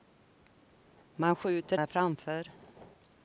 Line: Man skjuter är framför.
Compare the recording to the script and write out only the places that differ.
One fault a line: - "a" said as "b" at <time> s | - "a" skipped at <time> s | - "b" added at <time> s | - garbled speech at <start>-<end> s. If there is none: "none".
none